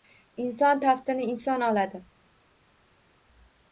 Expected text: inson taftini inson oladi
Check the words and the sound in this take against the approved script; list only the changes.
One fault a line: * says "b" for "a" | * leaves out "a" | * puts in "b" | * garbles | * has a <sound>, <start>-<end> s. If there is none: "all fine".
all fine